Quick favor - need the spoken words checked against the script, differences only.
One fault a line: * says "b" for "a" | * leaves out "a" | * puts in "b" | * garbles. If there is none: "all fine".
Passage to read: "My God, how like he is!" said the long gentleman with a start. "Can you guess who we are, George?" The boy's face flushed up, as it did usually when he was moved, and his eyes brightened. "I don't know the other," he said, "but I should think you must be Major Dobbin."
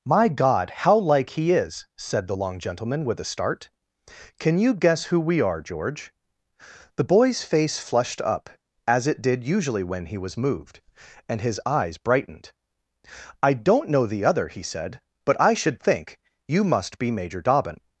all fine